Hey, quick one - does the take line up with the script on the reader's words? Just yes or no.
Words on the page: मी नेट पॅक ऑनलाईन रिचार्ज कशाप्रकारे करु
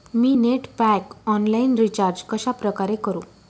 yes